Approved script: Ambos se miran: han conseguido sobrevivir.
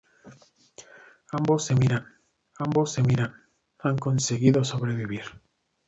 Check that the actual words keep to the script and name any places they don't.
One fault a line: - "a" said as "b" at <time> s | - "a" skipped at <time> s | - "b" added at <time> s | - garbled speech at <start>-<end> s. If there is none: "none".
- "ambos se miran" added at 2.6 s